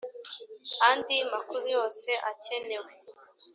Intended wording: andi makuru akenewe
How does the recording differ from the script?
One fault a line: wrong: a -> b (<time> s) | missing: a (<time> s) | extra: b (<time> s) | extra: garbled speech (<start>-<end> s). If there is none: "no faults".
extra: yose (1.8 s)